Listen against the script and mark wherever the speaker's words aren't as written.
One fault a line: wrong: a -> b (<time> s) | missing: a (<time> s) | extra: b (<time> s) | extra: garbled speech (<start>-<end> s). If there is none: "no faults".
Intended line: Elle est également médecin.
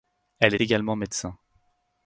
no faults